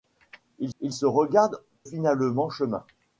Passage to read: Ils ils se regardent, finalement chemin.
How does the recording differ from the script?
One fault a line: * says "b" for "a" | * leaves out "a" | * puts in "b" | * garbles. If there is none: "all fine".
all fine